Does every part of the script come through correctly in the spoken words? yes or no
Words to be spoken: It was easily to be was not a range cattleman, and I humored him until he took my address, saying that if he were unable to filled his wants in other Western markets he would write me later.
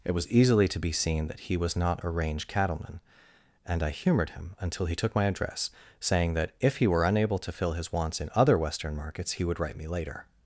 no